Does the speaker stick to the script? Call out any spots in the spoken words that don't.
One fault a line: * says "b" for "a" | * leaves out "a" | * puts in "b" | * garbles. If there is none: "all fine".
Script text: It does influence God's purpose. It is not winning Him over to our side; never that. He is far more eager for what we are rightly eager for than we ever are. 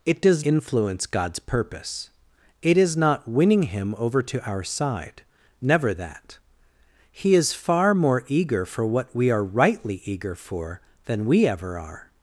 all fine